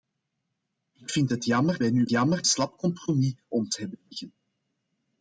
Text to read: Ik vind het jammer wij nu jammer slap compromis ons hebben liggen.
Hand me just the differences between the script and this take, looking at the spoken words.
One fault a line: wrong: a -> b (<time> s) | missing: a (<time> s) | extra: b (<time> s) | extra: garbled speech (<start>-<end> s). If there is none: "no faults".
no faults